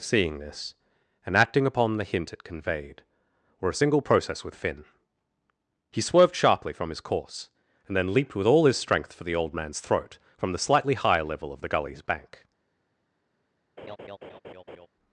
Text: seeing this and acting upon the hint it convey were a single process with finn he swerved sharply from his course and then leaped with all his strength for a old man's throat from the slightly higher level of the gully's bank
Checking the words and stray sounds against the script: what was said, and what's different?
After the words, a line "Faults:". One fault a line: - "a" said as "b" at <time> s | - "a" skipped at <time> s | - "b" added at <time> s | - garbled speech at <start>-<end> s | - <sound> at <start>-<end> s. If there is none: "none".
seeing this and acting upon the hint it conveyed were a single process with finn he swerved sharply from his course and then leaped with all his strength for the old man's throat from the slightly higher level of the gully's bank
Faults:
- "convey" said as "conveyed" at 2.4 s
- "a" said as "the" at 9.2 s
- laugh at 13.8-14.9 s